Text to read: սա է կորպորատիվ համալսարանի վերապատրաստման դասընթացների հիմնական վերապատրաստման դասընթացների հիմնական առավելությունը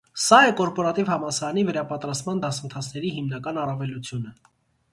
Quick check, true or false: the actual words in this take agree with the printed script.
false